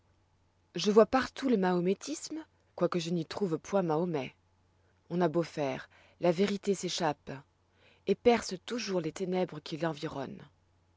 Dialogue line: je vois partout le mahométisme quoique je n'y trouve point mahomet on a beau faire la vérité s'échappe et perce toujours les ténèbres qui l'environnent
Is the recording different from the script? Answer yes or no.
no